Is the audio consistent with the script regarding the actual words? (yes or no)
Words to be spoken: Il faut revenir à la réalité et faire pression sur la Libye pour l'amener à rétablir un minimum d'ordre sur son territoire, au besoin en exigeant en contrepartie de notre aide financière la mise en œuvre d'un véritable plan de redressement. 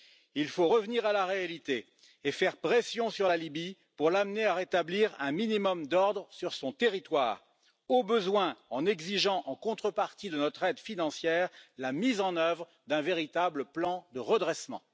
yes